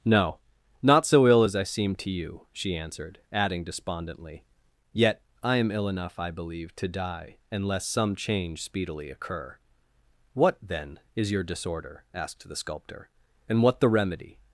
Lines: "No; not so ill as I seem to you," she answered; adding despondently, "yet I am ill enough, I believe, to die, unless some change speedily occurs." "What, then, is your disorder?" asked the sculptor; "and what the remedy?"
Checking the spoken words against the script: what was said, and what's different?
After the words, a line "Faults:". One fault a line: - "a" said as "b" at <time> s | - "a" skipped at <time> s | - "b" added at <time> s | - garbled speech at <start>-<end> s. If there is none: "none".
"No; not so ill as I seem to you," she answered; adding despondently, "yet I am ill enough, I believe, to die, unless some change speedily occur." "What, then, is your disorder?" asked the sculptor; "and what the remedy?"
Faults:
- "occurs" said as "occur" at 9.1 s